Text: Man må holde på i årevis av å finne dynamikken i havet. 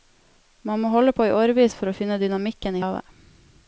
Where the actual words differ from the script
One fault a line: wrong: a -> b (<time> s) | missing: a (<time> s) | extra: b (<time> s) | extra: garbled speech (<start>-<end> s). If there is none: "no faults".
wrong: av -> for (1.8 s)